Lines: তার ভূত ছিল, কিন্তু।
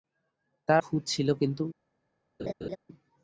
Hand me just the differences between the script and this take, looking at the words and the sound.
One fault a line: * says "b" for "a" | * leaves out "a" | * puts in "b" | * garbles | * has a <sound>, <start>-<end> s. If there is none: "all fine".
* has a laugh, 2.4-2.8 s